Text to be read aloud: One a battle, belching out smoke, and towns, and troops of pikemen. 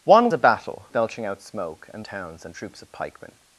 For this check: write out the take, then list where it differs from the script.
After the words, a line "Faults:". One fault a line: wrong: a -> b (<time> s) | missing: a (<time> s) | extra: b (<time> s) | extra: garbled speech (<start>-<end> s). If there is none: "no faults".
One a battle, belching out smoke, and towns, and troops of pikemen.
Faults:
no faults